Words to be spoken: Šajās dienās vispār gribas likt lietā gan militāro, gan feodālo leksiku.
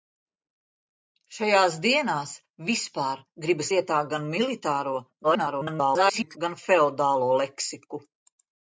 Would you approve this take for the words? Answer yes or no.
no